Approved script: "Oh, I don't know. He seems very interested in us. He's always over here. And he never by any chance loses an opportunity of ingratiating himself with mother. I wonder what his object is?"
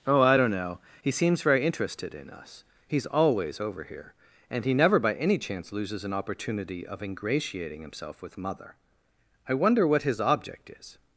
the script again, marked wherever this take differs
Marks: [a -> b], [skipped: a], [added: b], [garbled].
"Oh, I don't know. He seems very interested in us. He's always over here. And he never by any chance loses an opportunity of ingratiating himself with mother. I wonder what his object is?"